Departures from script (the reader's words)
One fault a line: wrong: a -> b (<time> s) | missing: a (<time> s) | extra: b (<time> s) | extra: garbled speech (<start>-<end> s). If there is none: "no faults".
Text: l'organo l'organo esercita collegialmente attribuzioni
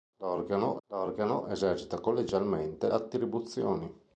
no faults